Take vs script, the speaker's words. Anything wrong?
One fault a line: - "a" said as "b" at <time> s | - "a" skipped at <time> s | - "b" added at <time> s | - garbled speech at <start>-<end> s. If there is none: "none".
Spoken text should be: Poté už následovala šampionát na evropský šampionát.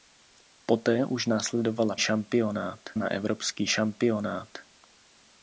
none